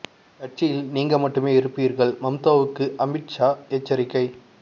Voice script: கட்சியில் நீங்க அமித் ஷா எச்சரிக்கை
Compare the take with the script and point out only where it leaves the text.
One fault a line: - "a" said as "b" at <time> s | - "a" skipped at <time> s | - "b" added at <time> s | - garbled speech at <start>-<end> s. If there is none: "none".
- "மட்டுமே இருப்பீர்கள் மம்தாவுக்கு" added at 1.2 s